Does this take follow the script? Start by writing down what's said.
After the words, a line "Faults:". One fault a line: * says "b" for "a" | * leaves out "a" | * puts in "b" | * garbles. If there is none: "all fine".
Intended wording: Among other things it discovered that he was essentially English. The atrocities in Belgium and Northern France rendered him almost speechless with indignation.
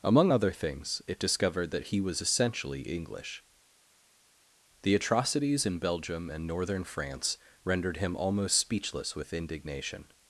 Among other things it discovered that he was essentially English. The atrocities in Belgium and Northern France rendered him almost speechless with indignation.
Faults:
all fine